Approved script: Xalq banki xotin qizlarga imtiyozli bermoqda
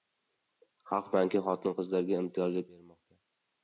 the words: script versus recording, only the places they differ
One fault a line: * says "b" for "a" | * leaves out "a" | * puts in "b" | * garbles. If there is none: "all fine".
all fine